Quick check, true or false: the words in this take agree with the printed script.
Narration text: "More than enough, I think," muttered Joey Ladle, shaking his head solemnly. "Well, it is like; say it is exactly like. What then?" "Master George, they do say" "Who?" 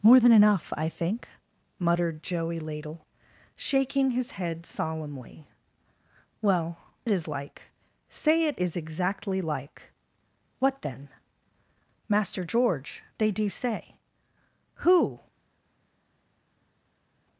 true